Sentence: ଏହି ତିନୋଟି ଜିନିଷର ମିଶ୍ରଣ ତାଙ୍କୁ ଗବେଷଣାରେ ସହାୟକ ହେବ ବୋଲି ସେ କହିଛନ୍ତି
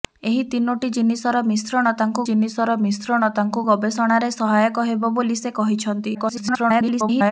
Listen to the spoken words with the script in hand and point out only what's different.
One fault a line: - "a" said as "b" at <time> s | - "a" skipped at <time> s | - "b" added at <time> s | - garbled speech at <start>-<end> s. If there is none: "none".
- "ଜିନିଷର ମିଶ୍ରଣ ତାଙ୍କୁ" added at 2.3 s
- garbled speech at 6.1-7.3 s